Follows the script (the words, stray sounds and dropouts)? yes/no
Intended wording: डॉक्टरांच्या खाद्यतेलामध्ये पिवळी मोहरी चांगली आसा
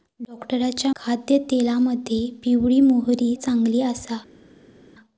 yes